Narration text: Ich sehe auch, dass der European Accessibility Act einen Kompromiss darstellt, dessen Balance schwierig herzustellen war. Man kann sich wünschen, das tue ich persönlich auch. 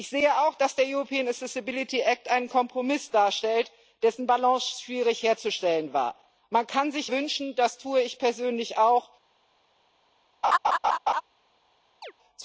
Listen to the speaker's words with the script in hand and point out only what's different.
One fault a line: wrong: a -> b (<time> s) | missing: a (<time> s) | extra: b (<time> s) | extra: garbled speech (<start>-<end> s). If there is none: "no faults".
no faults